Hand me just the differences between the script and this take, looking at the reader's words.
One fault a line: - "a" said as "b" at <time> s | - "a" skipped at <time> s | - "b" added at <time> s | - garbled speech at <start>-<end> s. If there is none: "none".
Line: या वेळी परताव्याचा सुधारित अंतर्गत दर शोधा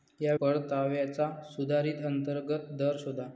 - "वेळी" skipped at 0.3 s